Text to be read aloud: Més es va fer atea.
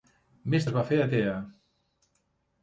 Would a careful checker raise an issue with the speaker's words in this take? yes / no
no